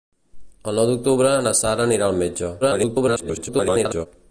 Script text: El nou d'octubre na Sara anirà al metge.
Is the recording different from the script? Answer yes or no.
yes